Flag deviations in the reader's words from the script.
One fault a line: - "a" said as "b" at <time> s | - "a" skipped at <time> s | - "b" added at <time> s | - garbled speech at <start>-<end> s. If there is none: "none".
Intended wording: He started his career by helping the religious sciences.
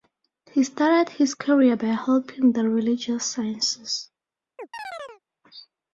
none